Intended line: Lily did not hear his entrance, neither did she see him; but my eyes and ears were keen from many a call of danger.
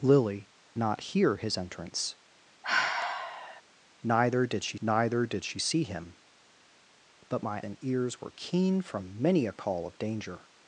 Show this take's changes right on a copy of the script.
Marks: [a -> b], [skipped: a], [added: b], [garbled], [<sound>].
Lily [skipped: did] not hear his entrance, [sigh] neither did she [added: neither did she] see him; but my [skipped: eyes] and ears were keen from many a call of danger.